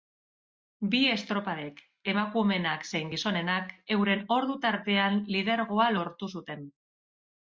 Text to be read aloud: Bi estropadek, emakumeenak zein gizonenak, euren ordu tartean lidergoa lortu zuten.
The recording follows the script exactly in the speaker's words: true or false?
true